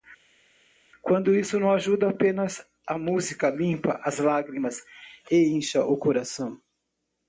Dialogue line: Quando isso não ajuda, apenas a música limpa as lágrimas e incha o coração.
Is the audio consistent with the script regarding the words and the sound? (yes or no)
yes